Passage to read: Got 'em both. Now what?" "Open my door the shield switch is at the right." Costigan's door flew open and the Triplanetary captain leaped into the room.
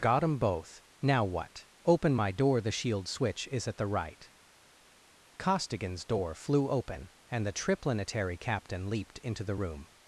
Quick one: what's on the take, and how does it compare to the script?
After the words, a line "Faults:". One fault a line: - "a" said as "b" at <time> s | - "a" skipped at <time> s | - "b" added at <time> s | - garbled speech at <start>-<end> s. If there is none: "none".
Got 'em both. Now what?" "Open my door the shield switch is at the right." Costigan's door flew open and the Triplanetary captain leaped into the room.
Faults:
none